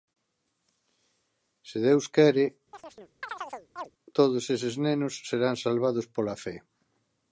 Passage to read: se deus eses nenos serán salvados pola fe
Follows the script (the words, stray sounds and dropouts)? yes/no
no